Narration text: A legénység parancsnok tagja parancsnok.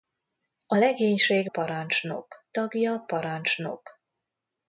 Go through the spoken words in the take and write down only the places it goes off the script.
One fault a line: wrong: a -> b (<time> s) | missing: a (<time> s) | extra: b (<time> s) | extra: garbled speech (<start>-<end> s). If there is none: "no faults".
no faults